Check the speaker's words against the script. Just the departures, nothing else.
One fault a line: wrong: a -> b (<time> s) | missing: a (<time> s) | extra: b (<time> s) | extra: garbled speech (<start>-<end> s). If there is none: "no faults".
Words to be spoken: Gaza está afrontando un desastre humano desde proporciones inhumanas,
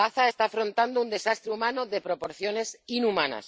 wrong: desde -> de (1.9 s)